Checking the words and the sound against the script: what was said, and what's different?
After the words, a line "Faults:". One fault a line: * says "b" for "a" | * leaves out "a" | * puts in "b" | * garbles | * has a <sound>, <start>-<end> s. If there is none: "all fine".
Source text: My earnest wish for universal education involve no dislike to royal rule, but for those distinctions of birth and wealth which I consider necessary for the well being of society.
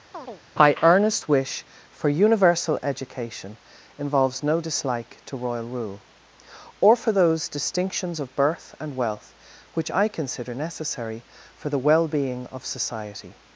My earnest wish for universal education involves no dislike to royal rule, or for those distinctions of birth and wealth which I consider necessary for the well being of society.
Faults:
* has a chirp, 0.1-0.4 s
* says "involves" for "involve"
* says "or" for "but"